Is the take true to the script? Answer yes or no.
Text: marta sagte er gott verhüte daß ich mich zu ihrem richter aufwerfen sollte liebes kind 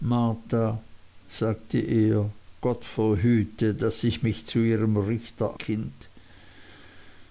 no